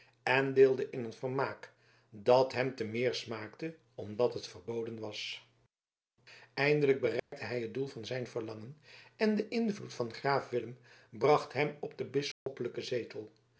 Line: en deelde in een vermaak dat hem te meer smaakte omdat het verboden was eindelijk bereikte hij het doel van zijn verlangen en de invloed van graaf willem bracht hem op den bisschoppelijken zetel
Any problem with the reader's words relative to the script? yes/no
no